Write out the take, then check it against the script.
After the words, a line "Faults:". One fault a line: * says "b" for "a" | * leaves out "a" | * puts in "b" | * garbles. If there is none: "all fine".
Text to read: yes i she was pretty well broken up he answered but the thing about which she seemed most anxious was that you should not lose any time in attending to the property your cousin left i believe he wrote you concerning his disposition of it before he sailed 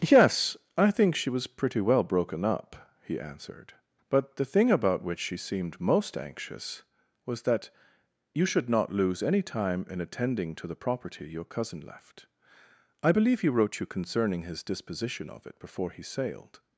yes i think she was pretty well broken up he answered but the thing about which she seemed most anxious was that you should not lose any time in attending to the property your cousin left i believe he wrote you concerning his disposition of it before he sailed
Faults:
* puts in "think"